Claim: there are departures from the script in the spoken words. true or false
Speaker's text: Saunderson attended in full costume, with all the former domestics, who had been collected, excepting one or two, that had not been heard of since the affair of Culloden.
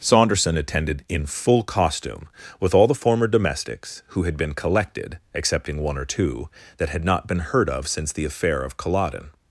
false